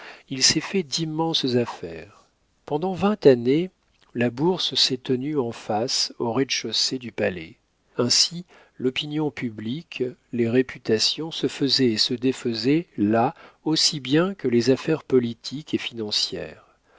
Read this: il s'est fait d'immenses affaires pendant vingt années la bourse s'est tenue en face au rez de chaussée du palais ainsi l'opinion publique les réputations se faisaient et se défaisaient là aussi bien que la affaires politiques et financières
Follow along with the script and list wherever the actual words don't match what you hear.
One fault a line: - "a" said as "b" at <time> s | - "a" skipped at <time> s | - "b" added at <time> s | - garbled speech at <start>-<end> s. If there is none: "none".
- "la" said as "les" at 14.5 s